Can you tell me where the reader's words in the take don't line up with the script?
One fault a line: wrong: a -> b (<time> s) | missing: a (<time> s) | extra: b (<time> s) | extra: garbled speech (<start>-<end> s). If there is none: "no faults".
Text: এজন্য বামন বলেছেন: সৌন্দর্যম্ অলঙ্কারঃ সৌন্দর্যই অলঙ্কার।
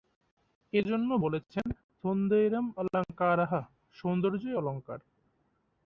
missing: বামন (1.1 s)